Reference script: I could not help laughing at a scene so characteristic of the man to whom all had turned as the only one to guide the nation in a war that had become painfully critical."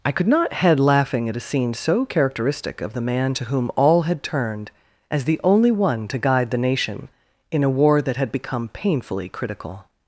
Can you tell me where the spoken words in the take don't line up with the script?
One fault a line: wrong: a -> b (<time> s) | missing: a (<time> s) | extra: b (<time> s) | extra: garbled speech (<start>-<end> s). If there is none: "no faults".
wrong: help -> head (0.5 s)